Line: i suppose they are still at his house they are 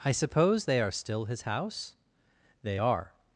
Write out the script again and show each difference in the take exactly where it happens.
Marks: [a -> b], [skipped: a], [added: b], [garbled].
i suppose they are still [skipped: at] his house they are